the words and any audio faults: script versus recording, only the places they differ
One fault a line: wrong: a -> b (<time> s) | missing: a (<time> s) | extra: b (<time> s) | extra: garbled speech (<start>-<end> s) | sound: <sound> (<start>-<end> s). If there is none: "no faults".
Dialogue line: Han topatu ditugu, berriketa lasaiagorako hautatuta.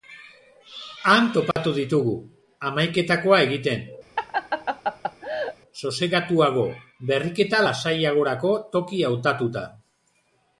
sound: dropout (1.5-1.6 s)
extra: hamaiketakoa egiten sosegatuago (2.7 s)
sound: laugh (4.2-5.6 s)
extra: toki (8.8 s)